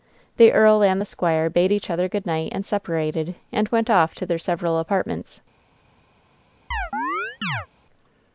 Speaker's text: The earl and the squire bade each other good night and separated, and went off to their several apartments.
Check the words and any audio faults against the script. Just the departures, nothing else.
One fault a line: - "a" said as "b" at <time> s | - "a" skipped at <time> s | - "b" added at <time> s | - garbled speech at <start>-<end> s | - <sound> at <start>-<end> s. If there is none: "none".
- chirp at 6.7-7.7 s